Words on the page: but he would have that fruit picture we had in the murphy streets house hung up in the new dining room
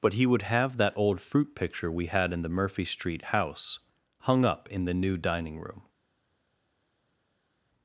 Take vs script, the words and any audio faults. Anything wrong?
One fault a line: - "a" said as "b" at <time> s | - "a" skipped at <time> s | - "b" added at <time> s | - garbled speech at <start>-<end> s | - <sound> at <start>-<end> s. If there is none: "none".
- "old" added at 1.0 s
- "streets" said as "street" at 2.9 s